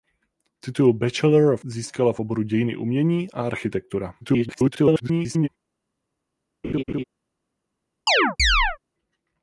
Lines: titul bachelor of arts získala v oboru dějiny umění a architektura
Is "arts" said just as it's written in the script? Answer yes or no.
no